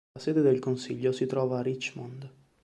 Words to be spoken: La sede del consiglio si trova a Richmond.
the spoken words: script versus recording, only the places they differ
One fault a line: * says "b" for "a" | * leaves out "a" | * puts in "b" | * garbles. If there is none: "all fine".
all fine